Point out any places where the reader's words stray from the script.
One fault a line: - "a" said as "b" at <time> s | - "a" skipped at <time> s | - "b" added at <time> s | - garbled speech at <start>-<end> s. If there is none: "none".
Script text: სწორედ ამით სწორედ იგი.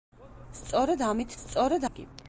none